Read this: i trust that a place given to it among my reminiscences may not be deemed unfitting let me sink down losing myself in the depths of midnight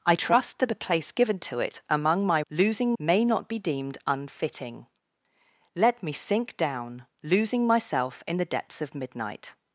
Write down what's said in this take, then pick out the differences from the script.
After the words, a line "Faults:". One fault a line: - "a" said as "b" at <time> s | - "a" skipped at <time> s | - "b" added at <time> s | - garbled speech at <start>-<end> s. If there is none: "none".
i trust that a place given to it among my losing may not be deemed unfitting let me sink down losing myself in the depths of midnight
Faults:
- "reminiscences" said as "losing" at 2.5 s